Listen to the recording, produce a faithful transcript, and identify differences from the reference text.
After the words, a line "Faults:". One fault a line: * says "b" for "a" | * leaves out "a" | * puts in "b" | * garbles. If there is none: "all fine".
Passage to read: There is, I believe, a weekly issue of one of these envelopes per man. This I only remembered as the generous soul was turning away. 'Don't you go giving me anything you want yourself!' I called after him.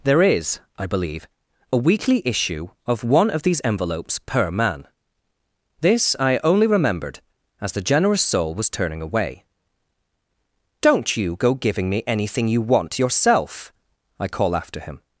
There is, I believe, a weekly issue of one of these envelopes per man. This I only remembered as the generous soul was turning away. 'Don't you go giving me anything you want yourself!' I call after him.
Faults:
* says "call" for "called"